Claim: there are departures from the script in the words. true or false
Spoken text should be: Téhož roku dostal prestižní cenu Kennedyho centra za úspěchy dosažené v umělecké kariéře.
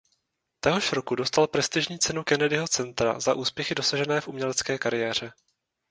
false